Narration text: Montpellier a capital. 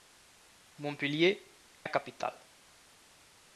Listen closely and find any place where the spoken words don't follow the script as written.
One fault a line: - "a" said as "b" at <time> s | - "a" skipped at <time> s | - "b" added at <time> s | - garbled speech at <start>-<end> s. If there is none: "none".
none